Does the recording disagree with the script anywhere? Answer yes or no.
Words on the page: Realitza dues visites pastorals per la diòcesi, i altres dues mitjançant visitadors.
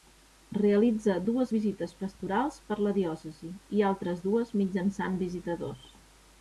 no